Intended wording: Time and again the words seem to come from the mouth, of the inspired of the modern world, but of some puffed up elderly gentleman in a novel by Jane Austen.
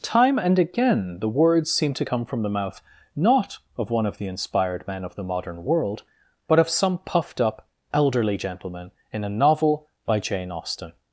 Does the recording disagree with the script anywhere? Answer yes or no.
yes